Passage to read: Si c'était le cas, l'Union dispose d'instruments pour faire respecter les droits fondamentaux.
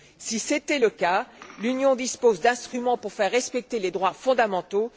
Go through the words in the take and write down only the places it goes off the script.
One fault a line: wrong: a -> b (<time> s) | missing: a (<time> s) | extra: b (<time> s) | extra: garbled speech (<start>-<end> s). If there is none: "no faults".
no faults